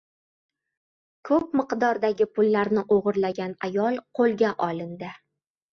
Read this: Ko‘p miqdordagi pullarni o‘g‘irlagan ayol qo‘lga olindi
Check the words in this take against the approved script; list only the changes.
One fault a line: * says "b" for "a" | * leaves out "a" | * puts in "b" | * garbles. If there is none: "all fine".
all fine